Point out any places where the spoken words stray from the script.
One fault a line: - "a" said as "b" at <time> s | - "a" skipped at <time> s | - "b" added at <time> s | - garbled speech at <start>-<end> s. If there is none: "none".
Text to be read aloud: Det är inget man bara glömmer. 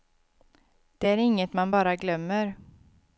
none